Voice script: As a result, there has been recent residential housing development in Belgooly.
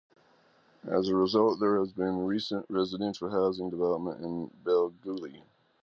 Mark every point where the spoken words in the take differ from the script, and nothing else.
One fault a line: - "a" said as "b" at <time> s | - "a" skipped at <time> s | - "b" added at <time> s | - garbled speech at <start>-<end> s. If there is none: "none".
none